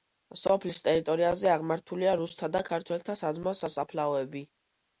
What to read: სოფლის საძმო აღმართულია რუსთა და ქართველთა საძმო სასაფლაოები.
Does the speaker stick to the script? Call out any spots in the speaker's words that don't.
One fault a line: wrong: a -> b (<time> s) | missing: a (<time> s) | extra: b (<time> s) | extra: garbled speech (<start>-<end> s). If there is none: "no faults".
wrong: საძმო -> ტერიტორიაზე (0.9 s)